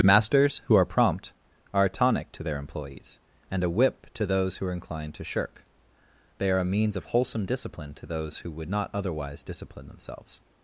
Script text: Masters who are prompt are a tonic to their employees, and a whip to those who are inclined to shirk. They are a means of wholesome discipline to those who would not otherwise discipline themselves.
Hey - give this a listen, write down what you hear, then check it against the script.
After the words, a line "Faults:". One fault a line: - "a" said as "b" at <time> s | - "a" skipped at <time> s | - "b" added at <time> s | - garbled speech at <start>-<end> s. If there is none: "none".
Masters who are prompt are a tonic to their employees, and a whip to those who are inclined to shirk. They are a means of wholesome discipline to those who would not otherwise discipline themselves.
Faults:
none